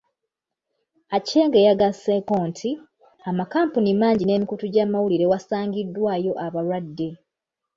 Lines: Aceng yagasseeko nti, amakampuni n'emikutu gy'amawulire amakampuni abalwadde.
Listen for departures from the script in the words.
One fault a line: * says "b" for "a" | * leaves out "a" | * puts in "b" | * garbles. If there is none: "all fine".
* puts in "mangi"
* says "wasangiddwayo" for "amakampuni"